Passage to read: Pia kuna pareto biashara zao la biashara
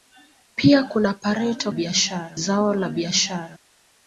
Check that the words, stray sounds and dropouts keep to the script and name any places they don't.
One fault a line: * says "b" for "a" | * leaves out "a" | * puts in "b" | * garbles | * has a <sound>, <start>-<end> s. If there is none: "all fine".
all fine